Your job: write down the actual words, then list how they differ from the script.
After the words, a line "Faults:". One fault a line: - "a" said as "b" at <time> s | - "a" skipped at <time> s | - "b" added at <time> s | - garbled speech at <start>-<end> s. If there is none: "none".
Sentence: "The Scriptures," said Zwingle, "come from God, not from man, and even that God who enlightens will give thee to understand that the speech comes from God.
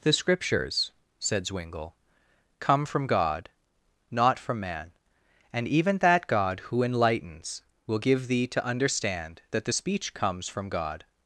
"The Scriptures," said Zwingle, "come from God, not from man, and even that God who enlightens will give thee to understand that the speech comes from God.
Faults:
none